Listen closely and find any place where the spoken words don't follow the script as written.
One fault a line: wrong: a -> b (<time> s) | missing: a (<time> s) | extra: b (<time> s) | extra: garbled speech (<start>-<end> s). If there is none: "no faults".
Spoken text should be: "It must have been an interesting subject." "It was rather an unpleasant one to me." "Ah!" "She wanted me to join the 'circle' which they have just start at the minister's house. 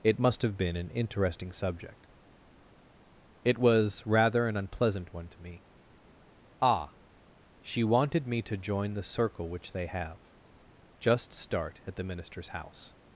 no faults